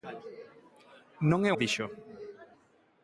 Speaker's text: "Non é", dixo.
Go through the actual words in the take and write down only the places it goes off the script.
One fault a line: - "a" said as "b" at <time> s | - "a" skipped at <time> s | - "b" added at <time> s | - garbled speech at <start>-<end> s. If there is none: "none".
none